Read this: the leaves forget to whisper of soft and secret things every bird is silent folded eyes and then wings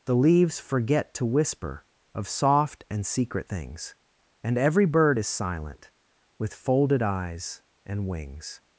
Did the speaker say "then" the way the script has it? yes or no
no